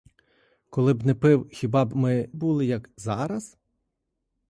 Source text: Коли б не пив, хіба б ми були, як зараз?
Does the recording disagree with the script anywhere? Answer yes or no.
no